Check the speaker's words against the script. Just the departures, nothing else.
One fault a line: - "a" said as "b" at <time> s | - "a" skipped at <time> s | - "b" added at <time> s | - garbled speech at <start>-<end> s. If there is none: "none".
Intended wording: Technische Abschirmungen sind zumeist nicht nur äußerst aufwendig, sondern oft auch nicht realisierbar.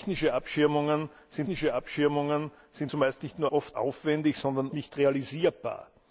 - "technische Abschirmungen sind" added at 1.4 s
- "äußerst" said as "oft" at 3.5 s
- "oft auch" skipped at 4.7 s